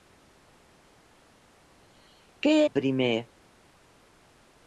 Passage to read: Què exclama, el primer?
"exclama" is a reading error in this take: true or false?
true